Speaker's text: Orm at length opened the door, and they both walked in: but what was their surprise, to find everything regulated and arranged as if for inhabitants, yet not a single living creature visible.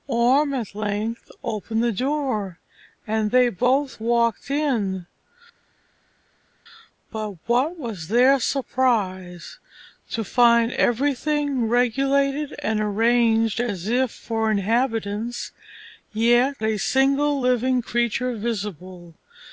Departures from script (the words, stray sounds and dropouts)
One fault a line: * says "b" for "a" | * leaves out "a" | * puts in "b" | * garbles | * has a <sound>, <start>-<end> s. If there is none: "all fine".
* leaves out "not"